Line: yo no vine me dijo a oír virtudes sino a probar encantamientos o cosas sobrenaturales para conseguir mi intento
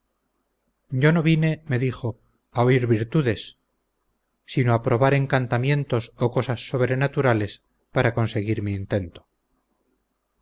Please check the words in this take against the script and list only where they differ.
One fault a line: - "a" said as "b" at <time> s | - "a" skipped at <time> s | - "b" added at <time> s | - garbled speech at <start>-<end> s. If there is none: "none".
none